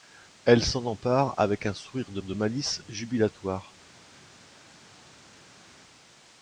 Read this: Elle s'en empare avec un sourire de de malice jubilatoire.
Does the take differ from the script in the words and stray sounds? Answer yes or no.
no